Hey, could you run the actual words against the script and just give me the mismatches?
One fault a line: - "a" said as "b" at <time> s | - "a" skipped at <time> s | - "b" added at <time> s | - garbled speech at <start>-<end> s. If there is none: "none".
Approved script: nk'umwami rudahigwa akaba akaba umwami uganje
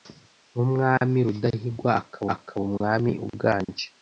none